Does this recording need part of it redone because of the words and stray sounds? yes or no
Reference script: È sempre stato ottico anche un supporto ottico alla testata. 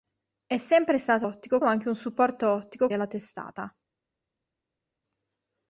no